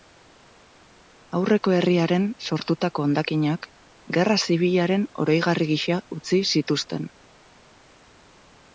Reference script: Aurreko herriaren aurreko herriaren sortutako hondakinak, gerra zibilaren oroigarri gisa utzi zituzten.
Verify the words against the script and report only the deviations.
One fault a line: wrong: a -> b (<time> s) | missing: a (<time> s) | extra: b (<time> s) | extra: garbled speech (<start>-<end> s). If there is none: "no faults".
missing: aurreko herriaren (2.2 s)